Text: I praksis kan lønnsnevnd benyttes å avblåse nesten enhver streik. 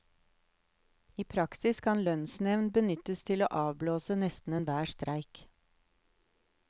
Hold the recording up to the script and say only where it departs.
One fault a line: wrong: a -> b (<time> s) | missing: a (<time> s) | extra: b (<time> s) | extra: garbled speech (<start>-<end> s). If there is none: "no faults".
extra: til (3.3 s)